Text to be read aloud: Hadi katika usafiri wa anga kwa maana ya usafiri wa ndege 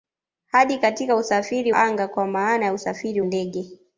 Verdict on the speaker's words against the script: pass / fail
fail